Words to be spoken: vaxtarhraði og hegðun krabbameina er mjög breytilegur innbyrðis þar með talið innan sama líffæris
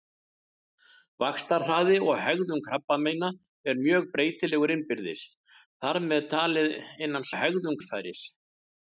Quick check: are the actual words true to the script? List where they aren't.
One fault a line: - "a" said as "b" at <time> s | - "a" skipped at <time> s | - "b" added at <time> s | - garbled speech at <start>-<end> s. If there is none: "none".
- "sama" said as "hegðun" at 7.4 s